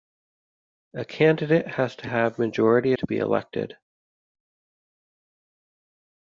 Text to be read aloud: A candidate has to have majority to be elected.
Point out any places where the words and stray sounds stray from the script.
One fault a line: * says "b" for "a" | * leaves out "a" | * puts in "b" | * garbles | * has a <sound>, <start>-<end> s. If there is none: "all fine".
all fine